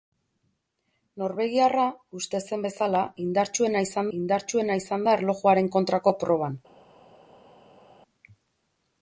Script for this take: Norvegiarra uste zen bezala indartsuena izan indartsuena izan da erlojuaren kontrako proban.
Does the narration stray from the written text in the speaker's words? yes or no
no